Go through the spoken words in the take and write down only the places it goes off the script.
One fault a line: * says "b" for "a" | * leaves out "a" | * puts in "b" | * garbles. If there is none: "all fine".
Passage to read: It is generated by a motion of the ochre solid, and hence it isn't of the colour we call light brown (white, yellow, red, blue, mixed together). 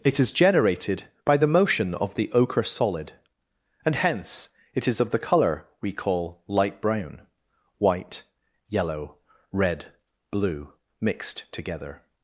* says "the" for "a"
* says "is" for "isn't"